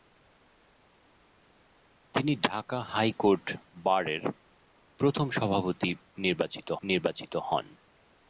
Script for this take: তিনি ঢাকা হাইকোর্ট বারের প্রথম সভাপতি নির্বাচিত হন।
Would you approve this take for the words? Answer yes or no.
no